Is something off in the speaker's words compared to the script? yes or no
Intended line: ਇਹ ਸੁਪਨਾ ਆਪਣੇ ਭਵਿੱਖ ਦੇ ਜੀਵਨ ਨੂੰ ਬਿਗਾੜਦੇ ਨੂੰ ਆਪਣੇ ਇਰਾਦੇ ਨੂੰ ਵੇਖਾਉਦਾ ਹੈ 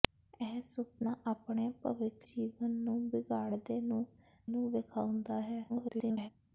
yes